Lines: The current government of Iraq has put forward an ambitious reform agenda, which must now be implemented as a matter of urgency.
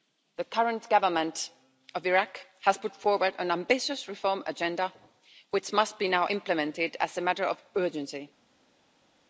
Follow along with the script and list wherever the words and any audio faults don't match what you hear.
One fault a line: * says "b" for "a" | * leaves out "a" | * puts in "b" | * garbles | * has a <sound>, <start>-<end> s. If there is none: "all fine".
all fine